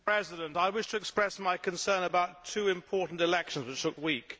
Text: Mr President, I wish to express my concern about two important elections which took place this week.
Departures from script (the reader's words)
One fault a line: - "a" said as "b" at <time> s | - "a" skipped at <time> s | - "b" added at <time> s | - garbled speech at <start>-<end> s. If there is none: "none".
- "place this" skipped at 4.0 s